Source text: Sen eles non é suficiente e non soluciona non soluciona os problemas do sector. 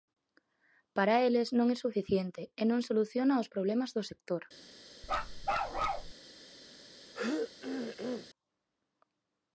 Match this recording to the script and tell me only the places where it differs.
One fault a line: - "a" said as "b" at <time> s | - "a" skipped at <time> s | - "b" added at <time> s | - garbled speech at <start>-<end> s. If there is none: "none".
- "Sen" said as "Para" at 0.9 s
- "non soluciona" skipped at 3.4 s